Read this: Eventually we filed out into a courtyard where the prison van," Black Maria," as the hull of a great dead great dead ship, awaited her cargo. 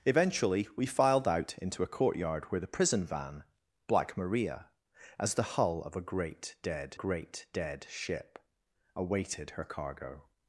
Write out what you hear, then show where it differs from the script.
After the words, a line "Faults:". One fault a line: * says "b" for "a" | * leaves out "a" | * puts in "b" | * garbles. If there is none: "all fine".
Eventually we filed out into a courtyard where the prison van," Black Maria," as the hull of a great dead great dead ship, awaited her cargo.
Faults:
all fine